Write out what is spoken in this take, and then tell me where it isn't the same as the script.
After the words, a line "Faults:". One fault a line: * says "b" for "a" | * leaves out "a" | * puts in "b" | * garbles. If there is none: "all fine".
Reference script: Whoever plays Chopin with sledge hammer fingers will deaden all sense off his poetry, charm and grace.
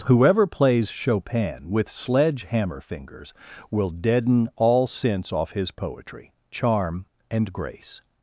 Whoever plays Chopin with sledge hammer fingers will deaden all sense off his poetry, charm and grace.
Faults:
all fine